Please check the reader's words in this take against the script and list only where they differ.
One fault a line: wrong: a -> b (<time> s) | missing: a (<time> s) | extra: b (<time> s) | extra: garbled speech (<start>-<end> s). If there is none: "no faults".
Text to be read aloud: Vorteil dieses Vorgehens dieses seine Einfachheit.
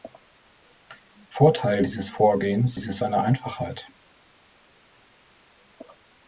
no faults